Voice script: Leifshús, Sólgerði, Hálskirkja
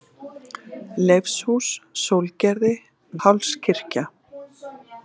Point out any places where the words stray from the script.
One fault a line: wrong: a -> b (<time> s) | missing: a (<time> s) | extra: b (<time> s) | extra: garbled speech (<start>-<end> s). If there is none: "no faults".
no faults